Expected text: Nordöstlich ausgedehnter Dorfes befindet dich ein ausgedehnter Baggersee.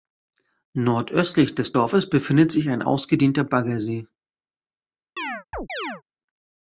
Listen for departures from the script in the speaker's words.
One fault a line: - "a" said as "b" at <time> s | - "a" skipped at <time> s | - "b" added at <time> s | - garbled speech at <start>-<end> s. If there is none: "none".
- "ausgedehnter" said as "des" at 1.5 s
- "dich" said as "sich" at 2.5 s